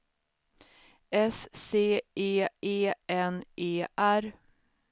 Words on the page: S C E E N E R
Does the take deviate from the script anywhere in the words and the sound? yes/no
no